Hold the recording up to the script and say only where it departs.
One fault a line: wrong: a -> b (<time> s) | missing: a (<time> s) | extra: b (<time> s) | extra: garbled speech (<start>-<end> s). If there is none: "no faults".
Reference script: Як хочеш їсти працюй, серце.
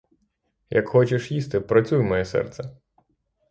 extra: моє (2.0 s)